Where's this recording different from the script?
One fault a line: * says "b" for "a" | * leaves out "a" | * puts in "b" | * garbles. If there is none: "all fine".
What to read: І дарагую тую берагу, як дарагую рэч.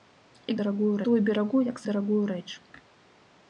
all fine